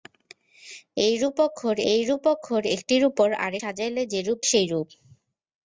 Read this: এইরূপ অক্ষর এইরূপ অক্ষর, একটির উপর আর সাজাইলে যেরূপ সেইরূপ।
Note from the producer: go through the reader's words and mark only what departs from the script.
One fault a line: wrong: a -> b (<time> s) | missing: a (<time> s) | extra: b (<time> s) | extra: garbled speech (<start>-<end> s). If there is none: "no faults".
no faults